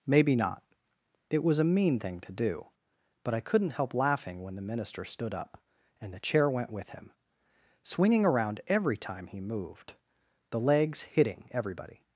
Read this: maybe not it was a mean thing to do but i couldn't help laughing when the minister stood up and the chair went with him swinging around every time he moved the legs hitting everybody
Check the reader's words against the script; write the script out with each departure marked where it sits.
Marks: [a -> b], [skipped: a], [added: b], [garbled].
maybe not it was a mean thing to do but i couldn't help laughing when the minister stood up and the chair went with him swinging around every time he moved the legs hitting everybody